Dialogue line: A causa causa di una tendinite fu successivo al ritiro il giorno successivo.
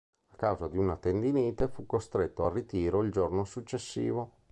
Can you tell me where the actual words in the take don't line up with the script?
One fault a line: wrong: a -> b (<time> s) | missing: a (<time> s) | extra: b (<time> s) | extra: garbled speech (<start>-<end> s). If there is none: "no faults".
missing: causa (0.7 s)
wrong: successivo -> costretto (1.8 s)